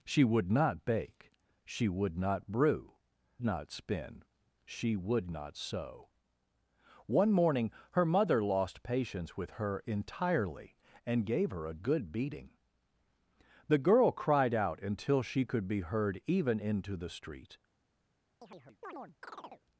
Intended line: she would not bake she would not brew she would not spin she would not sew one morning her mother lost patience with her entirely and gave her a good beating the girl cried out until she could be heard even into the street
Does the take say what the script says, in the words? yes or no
no